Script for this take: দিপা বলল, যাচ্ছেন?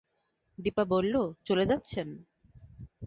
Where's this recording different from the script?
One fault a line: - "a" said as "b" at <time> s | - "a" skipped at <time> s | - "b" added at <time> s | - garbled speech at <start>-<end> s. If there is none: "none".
- "চলে" added at 1.5 s